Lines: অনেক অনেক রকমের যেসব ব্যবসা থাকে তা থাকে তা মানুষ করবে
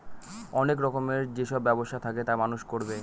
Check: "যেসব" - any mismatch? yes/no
no